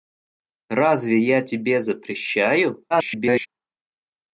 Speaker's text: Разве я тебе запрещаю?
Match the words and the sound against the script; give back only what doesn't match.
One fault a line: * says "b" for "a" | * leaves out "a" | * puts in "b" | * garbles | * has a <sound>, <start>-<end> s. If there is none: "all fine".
* garbles